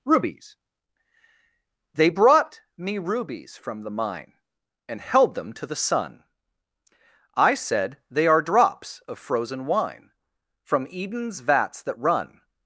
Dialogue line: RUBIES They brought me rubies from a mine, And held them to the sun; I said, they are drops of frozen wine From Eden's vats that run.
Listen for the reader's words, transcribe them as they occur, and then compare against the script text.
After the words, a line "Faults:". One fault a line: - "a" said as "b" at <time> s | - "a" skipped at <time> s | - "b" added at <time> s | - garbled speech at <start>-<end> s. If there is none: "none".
RUBIES They brought me rubies from the mine, And held them to the sun; I said, they are drops of frozen wine From Eden's vats that run.
Faults:
- "a" said as "the" at 3.8 s